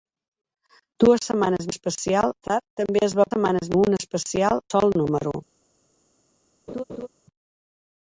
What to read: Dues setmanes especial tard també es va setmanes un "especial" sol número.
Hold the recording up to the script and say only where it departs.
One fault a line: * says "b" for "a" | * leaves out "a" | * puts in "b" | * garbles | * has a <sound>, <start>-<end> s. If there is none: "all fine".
* has a laugh, 6.7-7.1 s